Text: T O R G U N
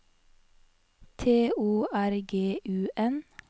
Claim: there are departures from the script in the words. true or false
false